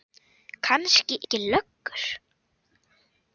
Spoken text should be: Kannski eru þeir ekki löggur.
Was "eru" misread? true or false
true